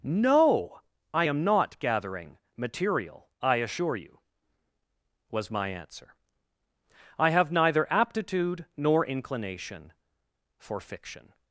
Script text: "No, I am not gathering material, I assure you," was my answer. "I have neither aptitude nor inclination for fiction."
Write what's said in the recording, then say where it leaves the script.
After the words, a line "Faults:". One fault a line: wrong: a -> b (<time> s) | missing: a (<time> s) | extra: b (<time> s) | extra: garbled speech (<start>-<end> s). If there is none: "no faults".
"No, I am not gathering material, I assure you," was my answer. "I have neither aptitude nor inclination for fiction."
Faults:
no faults